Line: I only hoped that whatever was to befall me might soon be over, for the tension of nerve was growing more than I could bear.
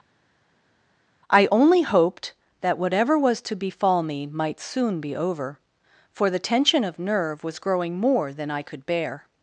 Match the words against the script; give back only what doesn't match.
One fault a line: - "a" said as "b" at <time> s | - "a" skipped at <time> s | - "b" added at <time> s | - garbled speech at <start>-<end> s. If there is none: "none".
none